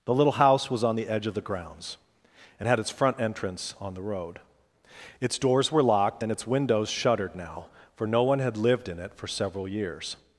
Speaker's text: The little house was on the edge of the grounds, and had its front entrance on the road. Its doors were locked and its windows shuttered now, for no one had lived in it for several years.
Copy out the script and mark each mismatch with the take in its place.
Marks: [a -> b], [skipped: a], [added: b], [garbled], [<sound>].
The little house was on the edge of the grounds, and had its front entrance on the road. Its doors were locked and its windows shuttered now, for no one had lived in it for several years.